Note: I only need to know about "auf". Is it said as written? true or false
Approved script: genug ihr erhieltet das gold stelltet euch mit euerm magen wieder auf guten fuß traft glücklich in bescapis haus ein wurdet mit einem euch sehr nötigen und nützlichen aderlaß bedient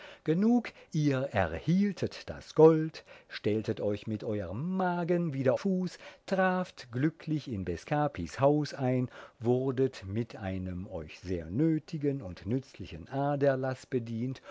false